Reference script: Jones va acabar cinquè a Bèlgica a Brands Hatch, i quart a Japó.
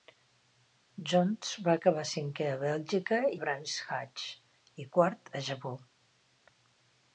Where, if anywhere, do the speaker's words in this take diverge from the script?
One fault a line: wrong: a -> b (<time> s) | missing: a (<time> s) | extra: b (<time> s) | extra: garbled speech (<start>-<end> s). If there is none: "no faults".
no faults